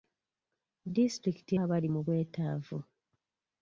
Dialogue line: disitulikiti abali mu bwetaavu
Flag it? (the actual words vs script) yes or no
no